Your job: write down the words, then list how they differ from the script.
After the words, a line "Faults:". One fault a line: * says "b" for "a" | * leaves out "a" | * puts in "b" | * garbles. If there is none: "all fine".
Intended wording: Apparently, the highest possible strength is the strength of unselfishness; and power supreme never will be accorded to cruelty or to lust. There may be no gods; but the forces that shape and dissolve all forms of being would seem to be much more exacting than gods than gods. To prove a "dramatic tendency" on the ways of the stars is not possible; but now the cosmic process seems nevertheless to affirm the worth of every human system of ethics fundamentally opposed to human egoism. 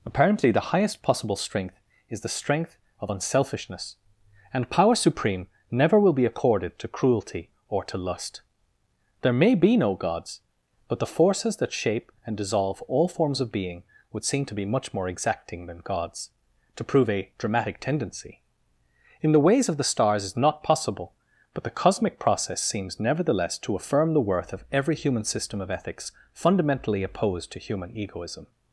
Apparently, the highest possible strength is the strength of unselfishness; and power supreme never will be accorded to cruelty or to lust. There may be no gods; but the forces that shape and dissolve all forms of being would seem to be much more exacting than gods. To prove a "dramatic tendency" in the ways of the stars is not possible; but the cosmic process seems nevertheless to affirm the worth of every human system of ethics fundamentally opposed to human egoism.
Faults:
* leaves out "than gods"
* says "in" for "on"
* leaves out "now"